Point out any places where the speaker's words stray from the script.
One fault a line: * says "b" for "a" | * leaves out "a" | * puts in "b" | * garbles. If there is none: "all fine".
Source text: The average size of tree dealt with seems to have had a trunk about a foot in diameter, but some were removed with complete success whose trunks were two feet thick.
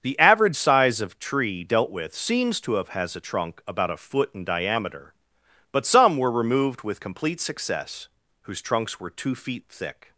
* says "has" for "had"